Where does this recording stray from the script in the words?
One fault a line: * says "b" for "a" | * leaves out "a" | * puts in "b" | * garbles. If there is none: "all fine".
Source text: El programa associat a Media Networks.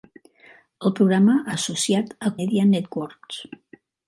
all fine